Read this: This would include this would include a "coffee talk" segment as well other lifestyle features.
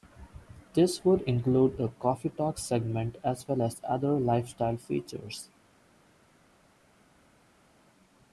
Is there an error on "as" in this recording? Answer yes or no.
no